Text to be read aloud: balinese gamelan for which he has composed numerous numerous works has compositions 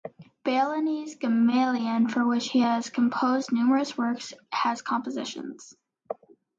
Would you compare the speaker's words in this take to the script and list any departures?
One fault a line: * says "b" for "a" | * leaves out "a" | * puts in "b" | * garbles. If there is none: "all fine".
* leaves out "numerous"